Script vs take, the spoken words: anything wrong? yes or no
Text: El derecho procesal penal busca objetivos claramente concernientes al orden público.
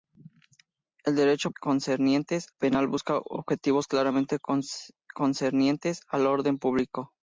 yes